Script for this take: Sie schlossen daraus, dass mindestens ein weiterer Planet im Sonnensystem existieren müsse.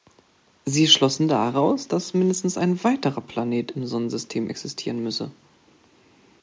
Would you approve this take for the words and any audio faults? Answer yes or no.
yes